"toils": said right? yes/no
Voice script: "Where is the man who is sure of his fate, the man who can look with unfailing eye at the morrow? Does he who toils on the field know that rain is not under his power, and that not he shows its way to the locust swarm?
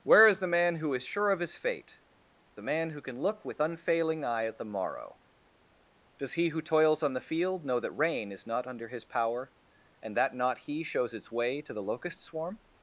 yes